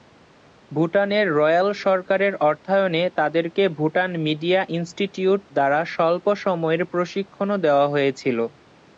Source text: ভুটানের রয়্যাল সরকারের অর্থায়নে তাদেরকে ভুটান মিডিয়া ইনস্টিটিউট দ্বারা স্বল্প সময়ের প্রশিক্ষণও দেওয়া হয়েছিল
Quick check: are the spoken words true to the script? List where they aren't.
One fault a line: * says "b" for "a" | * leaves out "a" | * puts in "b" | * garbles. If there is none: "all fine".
all fine